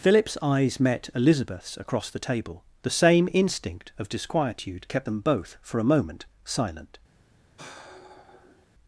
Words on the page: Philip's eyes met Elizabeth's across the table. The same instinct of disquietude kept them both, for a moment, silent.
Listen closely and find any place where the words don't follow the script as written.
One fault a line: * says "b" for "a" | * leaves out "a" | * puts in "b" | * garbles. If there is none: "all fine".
all fine